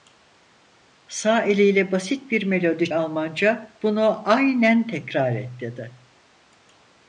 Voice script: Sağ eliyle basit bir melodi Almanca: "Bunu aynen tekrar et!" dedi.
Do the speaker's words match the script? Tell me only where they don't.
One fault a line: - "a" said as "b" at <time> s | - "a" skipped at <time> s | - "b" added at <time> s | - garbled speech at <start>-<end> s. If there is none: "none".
none